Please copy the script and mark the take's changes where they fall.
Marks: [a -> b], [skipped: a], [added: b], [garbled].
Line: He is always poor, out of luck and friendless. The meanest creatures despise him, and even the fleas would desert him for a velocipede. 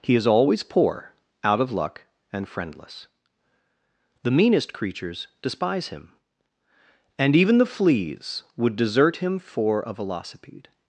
He is always poor, out of luck and friendless. The meanest creatures despise him, and even the fleas would desert him for a velocipede.